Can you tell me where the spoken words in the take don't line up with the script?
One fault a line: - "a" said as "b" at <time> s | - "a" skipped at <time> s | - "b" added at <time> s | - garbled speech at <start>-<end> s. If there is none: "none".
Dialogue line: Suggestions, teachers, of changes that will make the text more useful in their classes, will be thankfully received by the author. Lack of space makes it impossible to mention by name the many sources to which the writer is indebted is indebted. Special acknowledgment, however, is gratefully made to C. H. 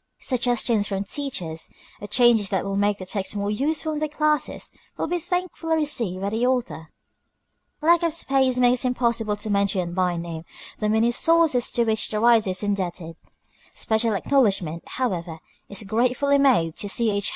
- "from" added at 0.9 s
- "is indebted" skipped at 13.2 s